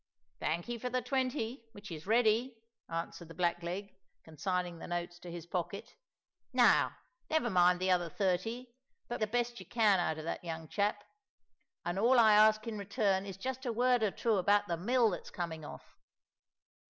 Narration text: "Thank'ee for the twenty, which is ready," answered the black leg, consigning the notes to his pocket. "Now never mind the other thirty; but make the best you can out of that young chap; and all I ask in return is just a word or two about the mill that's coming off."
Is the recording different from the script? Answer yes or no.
yes